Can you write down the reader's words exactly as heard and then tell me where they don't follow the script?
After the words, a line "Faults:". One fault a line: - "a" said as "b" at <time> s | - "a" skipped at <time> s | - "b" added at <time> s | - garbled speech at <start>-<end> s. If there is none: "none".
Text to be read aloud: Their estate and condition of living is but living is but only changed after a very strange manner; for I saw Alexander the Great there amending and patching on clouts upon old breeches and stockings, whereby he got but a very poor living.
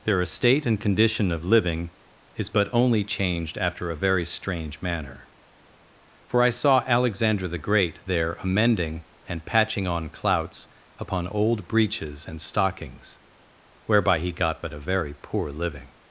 Their estate and condition of living is but only changed after a very strange manner; for I saw Alexander the Great there amending and patching on clouts upon old breeches and stockings, whereby he got but a very poor living.
Faults:
- "living is but" skipped at 2.7 s